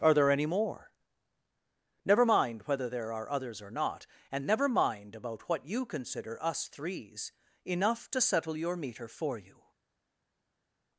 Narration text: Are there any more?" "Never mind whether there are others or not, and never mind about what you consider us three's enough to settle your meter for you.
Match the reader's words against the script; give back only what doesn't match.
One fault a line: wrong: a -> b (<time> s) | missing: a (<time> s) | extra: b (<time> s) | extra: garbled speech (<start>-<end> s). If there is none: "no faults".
no faults